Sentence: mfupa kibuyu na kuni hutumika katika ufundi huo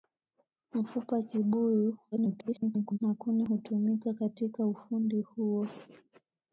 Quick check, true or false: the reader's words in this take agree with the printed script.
false